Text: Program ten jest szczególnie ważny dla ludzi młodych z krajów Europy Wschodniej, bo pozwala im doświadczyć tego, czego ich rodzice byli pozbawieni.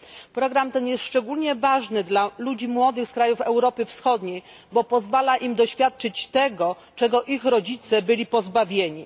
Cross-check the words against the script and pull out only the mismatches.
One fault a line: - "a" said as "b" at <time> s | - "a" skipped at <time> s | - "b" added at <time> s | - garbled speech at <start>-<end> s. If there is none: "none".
none